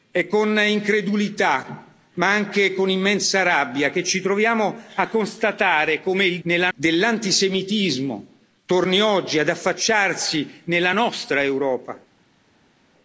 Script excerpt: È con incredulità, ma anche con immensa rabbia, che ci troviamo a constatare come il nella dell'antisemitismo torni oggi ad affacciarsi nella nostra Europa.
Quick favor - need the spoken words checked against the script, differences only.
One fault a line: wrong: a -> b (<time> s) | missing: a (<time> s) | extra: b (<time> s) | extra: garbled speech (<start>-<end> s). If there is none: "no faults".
no faults